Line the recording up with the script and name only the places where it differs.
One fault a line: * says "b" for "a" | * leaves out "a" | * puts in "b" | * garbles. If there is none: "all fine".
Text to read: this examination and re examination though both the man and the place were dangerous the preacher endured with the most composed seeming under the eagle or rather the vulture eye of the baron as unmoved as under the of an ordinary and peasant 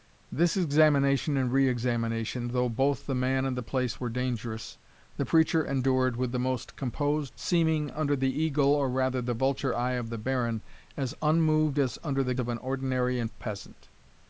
all fine